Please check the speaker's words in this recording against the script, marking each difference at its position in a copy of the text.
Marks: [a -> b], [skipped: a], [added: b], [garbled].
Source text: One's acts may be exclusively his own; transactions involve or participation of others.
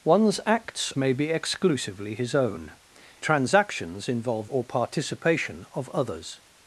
One's acts may be exclusively his own; transactions involve or participation of others.